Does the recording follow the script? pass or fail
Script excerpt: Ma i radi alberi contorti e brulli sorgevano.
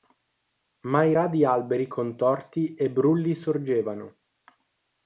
pass